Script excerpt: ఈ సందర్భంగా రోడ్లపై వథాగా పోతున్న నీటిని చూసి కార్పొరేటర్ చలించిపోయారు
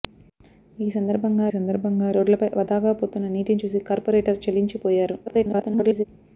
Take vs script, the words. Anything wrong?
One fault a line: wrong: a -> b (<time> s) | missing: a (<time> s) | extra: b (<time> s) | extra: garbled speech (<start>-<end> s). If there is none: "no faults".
extra: సందర్భంగా (1.5 s)
extra: garbled speech (5.3-6.1 s)